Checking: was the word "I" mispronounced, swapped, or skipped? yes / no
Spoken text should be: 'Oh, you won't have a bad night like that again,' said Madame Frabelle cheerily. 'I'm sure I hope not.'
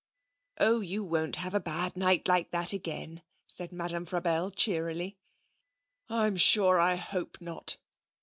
no